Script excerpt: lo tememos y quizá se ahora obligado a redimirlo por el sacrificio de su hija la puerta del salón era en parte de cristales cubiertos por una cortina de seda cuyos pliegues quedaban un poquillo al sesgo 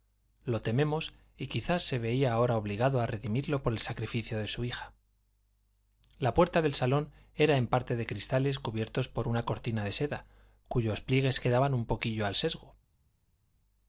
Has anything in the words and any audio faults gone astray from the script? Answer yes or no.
yes